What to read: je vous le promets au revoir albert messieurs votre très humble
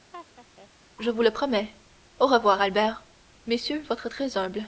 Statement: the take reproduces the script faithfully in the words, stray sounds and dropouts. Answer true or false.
false